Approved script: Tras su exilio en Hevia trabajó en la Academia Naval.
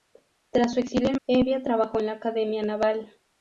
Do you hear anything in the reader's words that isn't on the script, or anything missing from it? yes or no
no